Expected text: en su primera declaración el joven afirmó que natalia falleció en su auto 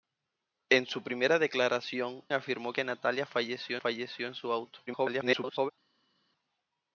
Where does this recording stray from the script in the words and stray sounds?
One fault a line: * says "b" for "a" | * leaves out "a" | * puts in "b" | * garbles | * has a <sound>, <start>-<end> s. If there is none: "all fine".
* leaves out "el joven"
* puts in "falleció"
* garbles